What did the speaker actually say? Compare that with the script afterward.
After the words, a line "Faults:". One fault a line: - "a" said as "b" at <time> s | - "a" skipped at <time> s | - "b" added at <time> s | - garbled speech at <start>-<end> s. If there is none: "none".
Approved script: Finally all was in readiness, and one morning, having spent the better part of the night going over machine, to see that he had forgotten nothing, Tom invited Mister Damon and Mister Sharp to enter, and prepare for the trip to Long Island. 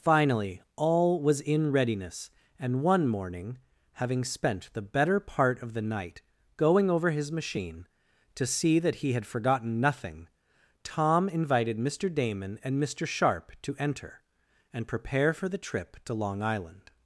Finally all was in readiness, and one morning, having spent the better part of the night going over his machine, to see that he had forgotten nothing, Tom invited Mister Damon and Mister Sharp to enter, and prepare for the trip to Long Island.
Faults:
- "his" added at 7.1 s